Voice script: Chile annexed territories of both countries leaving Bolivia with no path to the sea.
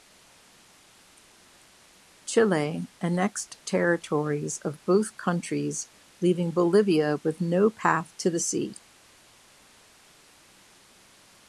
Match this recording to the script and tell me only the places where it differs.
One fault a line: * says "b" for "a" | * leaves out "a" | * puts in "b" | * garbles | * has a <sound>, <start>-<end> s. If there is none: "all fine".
all fine